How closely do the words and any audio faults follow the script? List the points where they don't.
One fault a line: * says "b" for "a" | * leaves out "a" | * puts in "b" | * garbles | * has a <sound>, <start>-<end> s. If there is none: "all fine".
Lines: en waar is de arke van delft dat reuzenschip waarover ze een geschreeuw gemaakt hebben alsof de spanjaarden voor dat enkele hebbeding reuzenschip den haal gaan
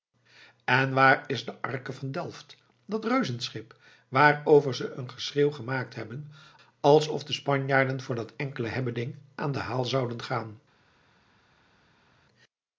* says "aan" for "reuzenschip"
* puts in "zouden"